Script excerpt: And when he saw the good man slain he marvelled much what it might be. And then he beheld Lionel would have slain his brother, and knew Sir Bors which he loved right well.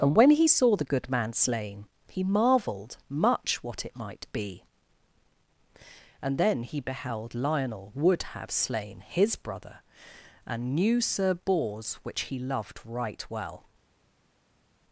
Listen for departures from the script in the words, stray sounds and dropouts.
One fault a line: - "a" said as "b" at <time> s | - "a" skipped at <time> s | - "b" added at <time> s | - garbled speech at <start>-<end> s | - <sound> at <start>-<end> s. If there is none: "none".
none